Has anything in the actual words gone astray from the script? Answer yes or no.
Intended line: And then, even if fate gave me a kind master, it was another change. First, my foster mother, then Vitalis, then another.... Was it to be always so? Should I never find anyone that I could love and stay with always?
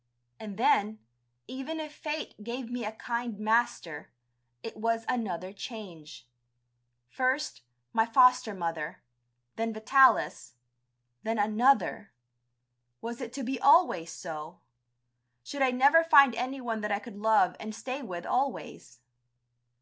no